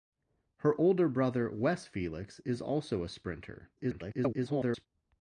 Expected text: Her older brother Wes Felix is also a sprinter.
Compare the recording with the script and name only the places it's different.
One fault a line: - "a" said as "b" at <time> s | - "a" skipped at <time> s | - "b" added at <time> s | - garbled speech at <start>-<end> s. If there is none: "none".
- garbled speech at 3.8-4.9 s